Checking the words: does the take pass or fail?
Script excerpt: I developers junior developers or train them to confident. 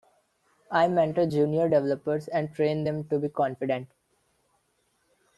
fail